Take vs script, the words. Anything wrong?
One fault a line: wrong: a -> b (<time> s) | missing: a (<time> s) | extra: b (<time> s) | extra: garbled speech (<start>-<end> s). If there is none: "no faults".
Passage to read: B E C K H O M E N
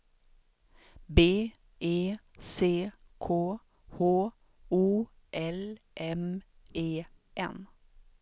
extra: L (5.3 s)